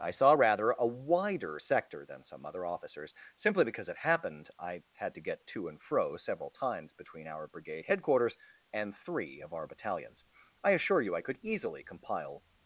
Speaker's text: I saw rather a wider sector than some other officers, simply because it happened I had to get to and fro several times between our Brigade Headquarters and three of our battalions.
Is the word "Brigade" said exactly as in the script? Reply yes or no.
yes